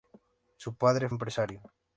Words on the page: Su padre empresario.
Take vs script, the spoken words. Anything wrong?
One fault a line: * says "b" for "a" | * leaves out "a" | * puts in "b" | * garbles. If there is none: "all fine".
all fine